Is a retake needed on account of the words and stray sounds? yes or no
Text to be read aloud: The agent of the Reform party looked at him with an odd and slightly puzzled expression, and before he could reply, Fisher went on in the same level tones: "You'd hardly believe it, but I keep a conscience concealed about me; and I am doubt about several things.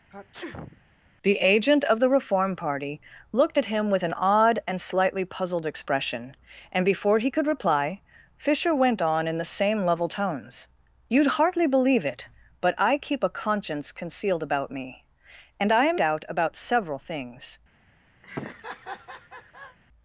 yes